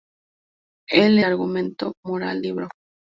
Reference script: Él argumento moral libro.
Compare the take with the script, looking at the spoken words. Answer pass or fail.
pass